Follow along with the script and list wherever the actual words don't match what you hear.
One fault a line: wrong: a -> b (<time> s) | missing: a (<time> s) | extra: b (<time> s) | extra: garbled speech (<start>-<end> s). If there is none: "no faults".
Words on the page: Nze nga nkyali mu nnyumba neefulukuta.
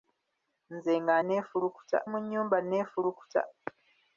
wrong: nkyali -> neefulukuta (1.3 s)